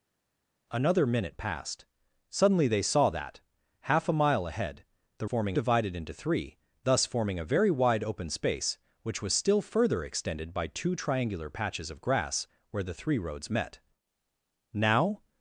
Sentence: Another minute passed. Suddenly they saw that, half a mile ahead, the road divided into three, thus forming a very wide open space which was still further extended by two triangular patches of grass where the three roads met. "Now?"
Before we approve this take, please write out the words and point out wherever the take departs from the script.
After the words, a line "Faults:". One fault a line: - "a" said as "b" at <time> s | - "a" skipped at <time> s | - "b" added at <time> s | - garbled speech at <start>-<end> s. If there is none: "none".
Another minute passed. Suddenly they saw that, half a mile ahead, the forming divided into three, thus forming a very wide open space which was still further extended by two triangular patches of grass where the three roads met. "Now?"
Faults:
- "road" said as "forming" at 5.2 s